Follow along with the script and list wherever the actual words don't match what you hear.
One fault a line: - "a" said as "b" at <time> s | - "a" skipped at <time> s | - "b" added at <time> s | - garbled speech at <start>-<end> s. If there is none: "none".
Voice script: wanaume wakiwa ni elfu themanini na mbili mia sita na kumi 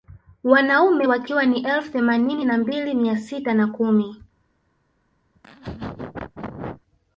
none